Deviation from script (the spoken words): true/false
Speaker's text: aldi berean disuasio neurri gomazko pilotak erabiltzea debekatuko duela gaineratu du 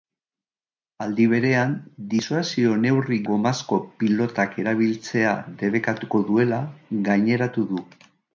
false